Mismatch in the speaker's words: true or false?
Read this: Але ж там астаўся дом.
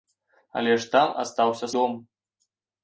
false